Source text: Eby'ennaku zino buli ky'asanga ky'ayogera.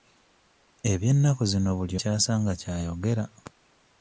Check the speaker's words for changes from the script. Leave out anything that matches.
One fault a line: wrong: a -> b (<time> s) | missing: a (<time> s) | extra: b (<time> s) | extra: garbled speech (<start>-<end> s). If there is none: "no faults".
no faults